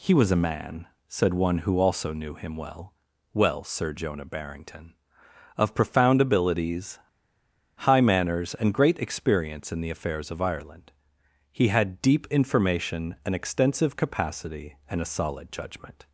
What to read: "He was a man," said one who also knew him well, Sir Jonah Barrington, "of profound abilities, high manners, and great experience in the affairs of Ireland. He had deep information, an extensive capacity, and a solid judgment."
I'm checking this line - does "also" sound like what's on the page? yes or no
yes